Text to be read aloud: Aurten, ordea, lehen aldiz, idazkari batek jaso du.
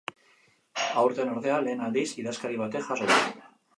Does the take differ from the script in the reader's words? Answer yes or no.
no